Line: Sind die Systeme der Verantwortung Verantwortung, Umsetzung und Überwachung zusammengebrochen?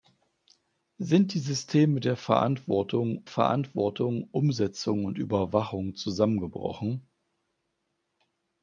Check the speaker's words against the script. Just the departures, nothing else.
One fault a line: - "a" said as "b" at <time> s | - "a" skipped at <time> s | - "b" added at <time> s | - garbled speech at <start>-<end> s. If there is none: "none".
none